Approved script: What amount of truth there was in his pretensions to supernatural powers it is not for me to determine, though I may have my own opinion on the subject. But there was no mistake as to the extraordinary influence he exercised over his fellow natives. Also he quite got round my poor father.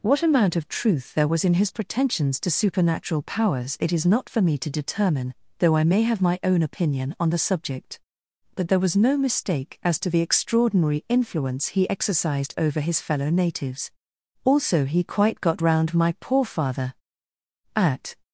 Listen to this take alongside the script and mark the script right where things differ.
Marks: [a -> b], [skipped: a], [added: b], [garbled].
What amount of truth there was in his pretensions to supernatural powers it is not for me to determine, though I may have my own opinion on the subject. But there was no mistake as to the extraordinary influence he exercised over his fellow natives. Also he quite got round my poor father. [added: At]